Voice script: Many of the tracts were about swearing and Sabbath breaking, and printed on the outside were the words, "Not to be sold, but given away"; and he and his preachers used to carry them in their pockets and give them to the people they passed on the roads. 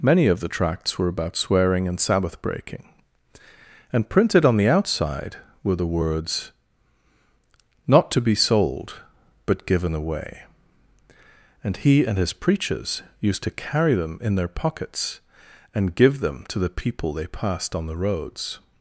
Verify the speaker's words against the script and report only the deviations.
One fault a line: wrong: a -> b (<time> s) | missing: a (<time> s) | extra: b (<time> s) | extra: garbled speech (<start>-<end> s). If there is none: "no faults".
no faults